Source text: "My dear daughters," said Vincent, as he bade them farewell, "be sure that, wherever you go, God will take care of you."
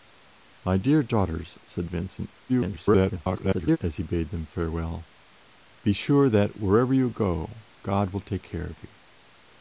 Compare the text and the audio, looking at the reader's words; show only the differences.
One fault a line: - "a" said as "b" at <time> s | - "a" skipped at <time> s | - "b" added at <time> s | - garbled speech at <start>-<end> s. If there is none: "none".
- garbled speech at 2.5-3.8 s